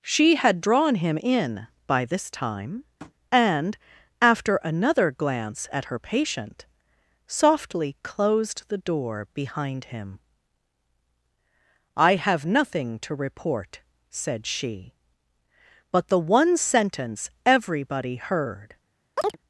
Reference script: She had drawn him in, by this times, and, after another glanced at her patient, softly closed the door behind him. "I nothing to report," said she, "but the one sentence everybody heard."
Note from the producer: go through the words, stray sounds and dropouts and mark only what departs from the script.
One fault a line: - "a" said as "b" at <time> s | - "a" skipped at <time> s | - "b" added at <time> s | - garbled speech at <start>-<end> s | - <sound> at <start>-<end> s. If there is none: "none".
- "times" said as "time" at 2.3 s
- tap at 3.0-3.1 s
- "glanced" said as "glance" at 5.1 s
- "have" added at 12.2 s
- chirp at 19.2-19.4 s